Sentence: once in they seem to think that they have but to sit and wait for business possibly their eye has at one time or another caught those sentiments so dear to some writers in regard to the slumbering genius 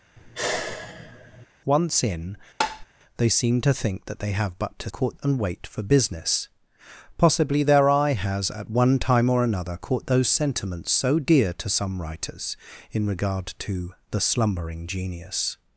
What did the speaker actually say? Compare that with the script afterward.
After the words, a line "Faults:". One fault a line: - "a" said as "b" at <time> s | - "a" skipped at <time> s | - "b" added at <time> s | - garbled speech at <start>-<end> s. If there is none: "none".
once in they seem to think that they have but to caught and wait for business possibly their eye has at one time or another caught those sentiments so dear to some writers in regard to the slumbering genius
Faults:
- "sit" said as "caught" at 4.9 s